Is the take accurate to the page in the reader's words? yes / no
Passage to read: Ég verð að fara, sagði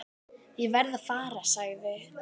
yes